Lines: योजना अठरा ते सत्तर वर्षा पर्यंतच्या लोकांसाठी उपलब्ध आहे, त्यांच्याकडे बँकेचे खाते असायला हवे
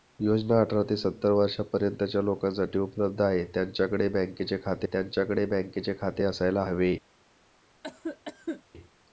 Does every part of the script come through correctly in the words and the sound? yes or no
no